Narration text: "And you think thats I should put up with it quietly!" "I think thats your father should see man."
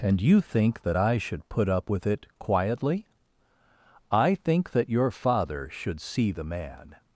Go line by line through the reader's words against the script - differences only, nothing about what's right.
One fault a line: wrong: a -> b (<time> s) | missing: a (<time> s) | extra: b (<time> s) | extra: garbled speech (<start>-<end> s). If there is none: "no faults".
wrong: thats -> that (0.8 s)
wrong: thats -> that (4.7 s)
extra: the (6.3 s)